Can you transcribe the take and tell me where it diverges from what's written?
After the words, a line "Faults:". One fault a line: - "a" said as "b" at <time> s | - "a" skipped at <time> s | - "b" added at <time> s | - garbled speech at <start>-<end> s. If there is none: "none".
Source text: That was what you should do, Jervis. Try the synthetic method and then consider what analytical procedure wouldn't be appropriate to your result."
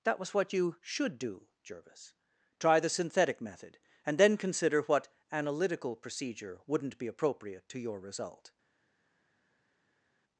That was what you should do, Jervis. Try the synthetic method and then consider what analytical procedure wouldn't be appropriate to your result."
Faults:
none